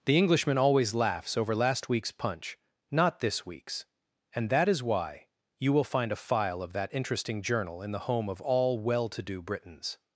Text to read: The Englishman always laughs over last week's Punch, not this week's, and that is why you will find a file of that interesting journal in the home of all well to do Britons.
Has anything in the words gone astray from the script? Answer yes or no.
no